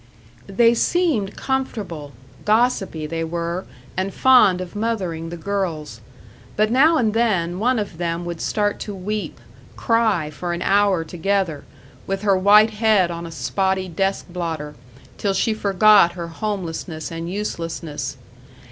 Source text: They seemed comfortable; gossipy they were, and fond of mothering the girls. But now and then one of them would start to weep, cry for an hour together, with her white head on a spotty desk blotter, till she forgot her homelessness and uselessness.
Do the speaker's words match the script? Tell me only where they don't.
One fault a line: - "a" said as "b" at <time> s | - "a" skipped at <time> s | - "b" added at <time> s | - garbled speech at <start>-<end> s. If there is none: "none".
none